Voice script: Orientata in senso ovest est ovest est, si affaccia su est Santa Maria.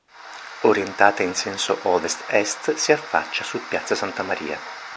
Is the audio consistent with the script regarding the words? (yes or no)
no